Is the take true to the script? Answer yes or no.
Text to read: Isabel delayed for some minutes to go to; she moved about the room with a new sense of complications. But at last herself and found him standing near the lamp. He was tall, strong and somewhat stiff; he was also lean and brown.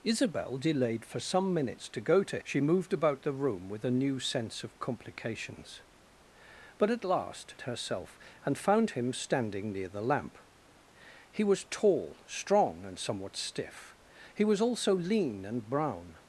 yes